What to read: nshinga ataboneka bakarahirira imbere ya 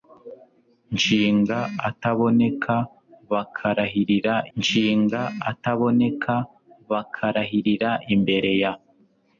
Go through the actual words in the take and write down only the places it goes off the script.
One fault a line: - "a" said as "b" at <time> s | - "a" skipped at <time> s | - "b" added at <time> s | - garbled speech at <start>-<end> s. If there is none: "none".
- "nshinga ataboneka bakarahirira" added at 4.6 s